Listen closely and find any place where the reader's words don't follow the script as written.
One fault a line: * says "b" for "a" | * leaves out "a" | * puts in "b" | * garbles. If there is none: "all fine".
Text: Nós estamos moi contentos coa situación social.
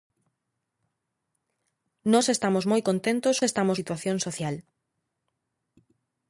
* says "estamos" for "coa"